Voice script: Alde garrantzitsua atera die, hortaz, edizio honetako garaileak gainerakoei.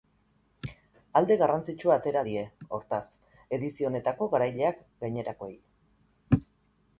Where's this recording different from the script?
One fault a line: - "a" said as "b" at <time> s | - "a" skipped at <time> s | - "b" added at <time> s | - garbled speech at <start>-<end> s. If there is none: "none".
none